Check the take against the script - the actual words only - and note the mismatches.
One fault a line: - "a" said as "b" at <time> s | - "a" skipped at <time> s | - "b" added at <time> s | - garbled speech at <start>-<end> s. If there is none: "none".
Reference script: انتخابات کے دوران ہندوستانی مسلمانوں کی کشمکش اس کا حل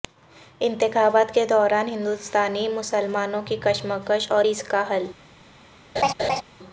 - "اور" added at 4.3 s